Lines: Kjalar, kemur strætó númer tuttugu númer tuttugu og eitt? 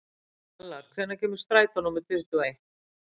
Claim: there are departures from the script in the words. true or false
true